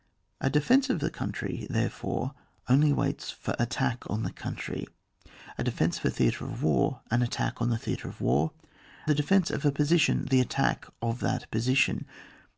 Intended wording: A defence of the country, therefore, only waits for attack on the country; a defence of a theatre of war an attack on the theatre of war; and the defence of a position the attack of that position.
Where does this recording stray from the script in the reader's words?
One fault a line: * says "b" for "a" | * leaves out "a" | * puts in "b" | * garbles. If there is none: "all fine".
* leaves out "and"